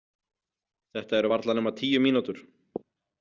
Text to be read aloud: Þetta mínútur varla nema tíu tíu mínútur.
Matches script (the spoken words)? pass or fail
fail